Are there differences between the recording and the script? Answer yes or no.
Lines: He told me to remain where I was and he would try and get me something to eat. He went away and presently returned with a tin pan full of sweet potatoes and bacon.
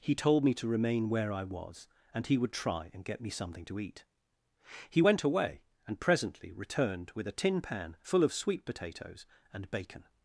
no